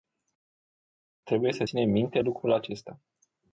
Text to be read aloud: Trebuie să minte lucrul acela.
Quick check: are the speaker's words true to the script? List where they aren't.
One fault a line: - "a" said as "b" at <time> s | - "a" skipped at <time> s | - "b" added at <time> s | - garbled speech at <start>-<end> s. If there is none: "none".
- "ținem" added at 1.6 s
- "acela" said as "acesta" at 2.5 s